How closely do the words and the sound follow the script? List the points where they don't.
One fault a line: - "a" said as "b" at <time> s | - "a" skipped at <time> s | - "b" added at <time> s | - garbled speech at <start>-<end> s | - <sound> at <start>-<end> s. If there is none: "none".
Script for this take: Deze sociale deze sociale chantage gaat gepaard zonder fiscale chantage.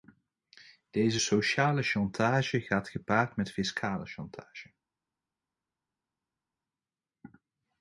- "deze sociale" skipped at 1.8 s
- "zonder" said as "met" at 3.4 s